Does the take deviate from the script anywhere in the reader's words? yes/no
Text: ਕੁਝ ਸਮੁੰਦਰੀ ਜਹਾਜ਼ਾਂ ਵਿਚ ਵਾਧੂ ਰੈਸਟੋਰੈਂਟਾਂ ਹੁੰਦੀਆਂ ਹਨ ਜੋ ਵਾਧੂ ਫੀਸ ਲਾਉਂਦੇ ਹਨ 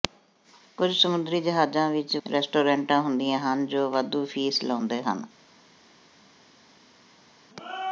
yes